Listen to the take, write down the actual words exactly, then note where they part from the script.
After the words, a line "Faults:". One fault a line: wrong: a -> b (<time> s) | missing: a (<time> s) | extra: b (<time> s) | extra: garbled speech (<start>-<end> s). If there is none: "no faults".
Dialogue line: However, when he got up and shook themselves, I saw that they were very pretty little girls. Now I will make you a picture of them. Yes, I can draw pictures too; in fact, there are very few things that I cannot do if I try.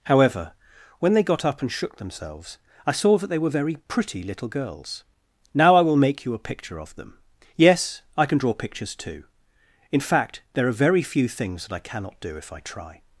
However, when they got up and shook themselves, I saw that they were very pretty little girls. Now I will make you a picture of them. Yes, I can draw pictures too; in fact, there are very few things that I cannot do if I try.
Faults:
wrong: he -> they (1.1 s)